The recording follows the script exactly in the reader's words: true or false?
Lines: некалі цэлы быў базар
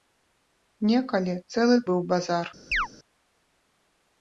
true